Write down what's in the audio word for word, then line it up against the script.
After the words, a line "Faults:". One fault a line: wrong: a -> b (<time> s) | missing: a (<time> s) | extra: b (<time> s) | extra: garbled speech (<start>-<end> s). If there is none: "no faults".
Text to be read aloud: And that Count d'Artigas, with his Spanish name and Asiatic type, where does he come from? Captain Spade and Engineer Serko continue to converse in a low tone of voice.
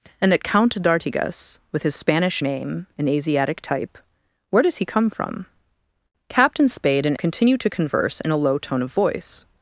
And that Count d'Artigas, with his Spanish name and Asiatic type, where does he come from? Captain Spade and Continue to converse in a low tone of voice.
Faults:
missing: Engineer Serko (7.2 s)